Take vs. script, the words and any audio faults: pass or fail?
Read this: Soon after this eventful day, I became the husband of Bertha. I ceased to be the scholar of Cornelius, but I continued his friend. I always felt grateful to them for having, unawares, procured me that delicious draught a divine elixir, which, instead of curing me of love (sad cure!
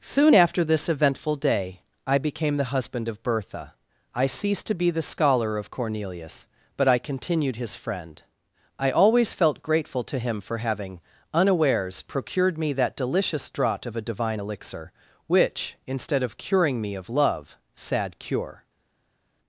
fail